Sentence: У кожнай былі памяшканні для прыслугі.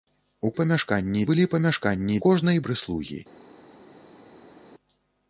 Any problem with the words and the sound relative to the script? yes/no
yes